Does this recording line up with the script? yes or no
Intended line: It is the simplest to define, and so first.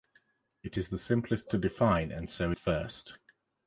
yes